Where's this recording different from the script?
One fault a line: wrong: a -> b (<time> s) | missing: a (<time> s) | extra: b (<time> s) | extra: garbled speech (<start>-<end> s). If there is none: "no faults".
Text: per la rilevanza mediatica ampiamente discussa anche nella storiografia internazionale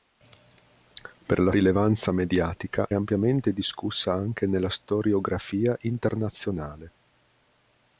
no faults